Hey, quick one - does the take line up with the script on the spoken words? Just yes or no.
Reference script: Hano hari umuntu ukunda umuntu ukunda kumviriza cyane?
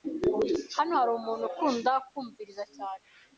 no